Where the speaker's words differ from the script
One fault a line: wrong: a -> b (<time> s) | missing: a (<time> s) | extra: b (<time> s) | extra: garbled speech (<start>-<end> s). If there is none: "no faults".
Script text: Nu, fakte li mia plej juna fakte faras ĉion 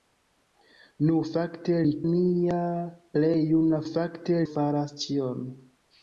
no faults